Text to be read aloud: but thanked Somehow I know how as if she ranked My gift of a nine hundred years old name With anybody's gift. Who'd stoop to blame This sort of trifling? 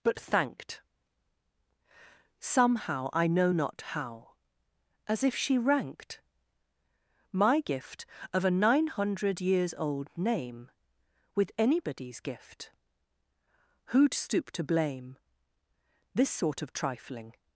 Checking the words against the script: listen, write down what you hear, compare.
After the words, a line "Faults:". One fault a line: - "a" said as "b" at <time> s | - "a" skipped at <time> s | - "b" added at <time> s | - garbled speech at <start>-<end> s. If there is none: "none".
but thanked Somehow I know not how as if she ranked My gift of a nine hundred years old name With anybody's gift. Who'd stoop to blame This sort of trifling?
Faults:
- "not" added at 3.5 s